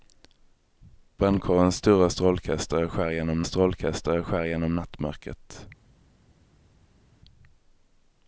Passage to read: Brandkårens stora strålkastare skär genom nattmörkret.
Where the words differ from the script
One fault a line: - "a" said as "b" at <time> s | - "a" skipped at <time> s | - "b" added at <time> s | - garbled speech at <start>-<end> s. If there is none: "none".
- "strålkastare skär genom" added at 3.4 s